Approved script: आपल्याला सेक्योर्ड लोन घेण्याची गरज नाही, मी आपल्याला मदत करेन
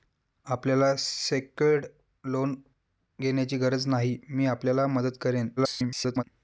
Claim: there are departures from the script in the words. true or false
true